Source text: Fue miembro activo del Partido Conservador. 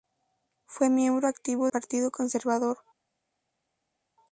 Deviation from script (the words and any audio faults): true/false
true